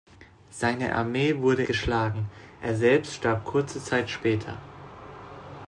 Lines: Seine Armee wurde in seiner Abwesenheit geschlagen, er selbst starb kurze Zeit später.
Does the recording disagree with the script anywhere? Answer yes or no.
yes